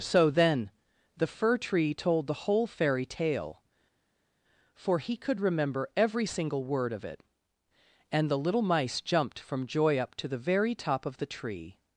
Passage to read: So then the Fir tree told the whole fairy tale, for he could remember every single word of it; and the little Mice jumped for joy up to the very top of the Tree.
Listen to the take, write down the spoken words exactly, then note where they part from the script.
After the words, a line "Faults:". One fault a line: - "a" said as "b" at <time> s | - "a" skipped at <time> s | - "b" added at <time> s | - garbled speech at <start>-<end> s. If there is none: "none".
So then the Fir tree told the whole fairy tale, for he could remember every single word of it; and the little Mice jumped from joy up to the very top of the Tree.
Faults:
- "for" said as "from" at 9.4 s